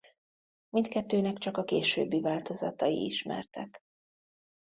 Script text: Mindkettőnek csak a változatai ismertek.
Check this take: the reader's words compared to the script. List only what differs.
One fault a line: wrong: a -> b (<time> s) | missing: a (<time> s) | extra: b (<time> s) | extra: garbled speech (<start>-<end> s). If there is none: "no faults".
extra: későbbi (1.6 s)